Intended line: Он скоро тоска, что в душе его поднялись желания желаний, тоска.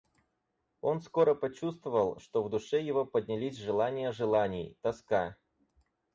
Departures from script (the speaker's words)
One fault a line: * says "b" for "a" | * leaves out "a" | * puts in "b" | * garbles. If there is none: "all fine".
* says "почувствовал" for "тоска"